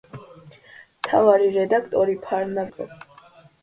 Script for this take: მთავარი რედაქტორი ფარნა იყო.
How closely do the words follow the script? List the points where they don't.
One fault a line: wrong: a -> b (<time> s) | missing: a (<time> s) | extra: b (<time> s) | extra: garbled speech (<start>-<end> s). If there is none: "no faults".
no faults